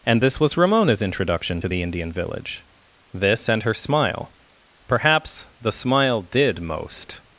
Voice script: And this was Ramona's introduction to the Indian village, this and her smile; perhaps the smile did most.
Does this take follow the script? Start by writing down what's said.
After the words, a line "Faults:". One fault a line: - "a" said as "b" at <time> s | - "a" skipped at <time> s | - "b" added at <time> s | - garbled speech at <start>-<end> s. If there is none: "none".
And this was Ramona's introduction to the Indian village, this and her smile; perhaps the smile did most.
Faults:
none